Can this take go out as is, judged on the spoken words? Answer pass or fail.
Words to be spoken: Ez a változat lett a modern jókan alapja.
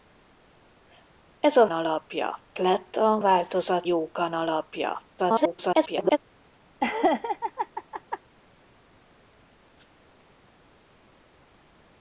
fail